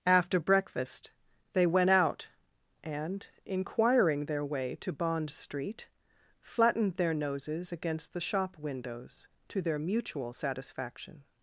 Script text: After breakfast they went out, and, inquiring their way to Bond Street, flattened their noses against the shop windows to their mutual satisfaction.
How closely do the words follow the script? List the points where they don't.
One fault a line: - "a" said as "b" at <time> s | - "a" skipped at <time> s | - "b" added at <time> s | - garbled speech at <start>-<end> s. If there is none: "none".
none